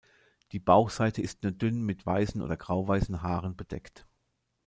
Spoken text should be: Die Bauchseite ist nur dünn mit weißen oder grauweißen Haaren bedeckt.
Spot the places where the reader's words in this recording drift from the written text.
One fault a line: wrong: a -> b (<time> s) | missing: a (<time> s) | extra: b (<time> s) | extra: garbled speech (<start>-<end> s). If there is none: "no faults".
no faults